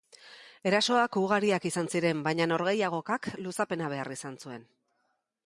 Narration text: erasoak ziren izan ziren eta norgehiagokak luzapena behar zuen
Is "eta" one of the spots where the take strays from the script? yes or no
yes